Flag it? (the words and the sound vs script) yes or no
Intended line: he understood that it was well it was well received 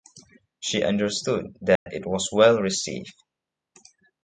yes